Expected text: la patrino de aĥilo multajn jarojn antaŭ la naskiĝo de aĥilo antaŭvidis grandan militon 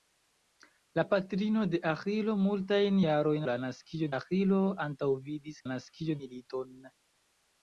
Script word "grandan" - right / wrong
wrong